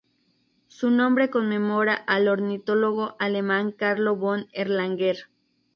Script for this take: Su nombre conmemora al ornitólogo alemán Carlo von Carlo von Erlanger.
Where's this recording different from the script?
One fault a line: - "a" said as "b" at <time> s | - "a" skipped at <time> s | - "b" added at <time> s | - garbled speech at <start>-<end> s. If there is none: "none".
- "Carlo von" skipped at 4.5 s